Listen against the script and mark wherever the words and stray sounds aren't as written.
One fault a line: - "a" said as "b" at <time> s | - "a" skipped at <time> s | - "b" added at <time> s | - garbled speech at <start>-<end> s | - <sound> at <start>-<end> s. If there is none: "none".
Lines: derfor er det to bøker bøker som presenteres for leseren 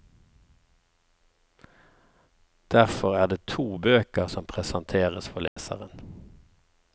- "bøker" skipped at 4.3 s
- dropout at 5.5-5.6 s